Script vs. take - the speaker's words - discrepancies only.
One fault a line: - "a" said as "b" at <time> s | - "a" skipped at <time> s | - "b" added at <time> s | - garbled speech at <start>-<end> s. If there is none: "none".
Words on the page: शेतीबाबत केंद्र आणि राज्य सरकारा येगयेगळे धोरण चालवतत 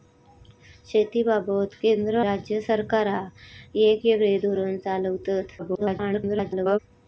- "आणि" skipped at 2.2 s
- garbled speech at 5.6-6.8 s